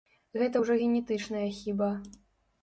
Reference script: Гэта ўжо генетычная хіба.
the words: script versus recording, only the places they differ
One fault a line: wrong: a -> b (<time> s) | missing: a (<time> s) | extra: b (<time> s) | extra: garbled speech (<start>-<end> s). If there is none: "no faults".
no faults